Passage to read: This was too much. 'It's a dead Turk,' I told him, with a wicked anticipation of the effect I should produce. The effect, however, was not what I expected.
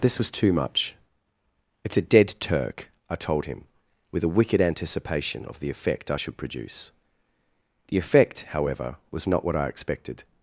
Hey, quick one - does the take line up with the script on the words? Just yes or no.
yes